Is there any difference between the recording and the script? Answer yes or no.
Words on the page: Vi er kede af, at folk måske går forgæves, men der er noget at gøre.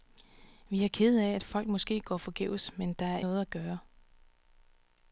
no